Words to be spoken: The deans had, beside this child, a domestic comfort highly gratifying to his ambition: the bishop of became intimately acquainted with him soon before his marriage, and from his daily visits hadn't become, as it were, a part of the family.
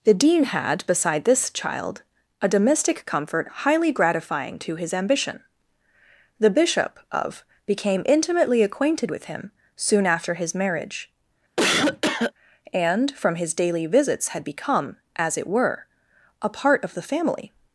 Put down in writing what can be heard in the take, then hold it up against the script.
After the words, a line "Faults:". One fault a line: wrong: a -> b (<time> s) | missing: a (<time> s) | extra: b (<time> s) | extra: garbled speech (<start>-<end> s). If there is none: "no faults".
The dean had, beside this child, a domestic comfort highly gratifying to his ambition: the bishop of became intimately acquainted with him soon after his marriage, and from his daily visits had become, as it were, a part of the family.
Faults:
wrong: deans -> dean (0.1 s)
wrong: before -> after (10.0 s)
wrong: hadn't -> had (14.3 s)